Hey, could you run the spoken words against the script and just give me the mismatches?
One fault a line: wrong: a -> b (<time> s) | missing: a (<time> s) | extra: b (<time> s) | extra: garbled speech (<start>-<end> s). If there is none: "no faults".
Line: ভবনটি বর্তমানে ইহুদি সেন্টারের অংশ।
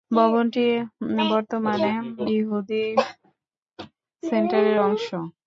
no faults